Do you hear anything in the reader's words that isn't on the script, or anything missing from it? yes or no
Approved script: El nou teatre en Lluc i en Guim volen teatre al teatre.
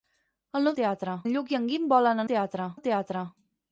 no